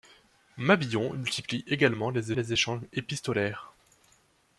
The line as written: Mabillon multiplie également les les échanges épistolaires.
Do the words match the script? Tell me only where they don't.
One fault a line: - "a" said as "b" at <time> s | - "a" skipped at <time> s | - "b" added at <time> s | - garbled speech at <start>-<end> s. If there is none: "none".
none